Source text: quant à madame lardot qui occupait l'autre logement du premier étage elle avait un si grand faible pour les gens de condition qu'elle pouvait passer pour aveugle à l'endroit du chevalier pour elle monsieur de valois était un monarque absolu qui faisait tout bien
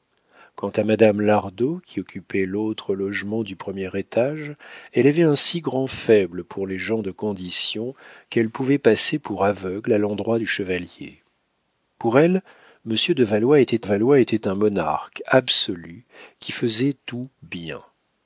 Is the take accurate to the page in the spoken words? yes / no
no